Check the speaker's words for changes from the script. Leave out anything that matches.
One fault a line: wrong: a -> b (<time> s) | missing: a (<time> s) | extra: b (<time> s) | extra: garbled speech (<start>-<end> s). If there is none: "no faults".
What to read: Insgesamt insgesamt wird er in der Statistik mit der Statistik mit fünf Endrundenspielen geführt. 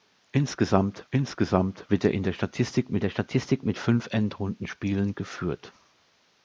no faults